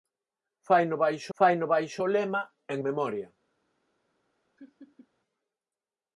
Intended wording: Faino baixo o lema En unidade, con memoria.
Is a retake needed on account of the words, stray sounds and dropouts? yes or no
yes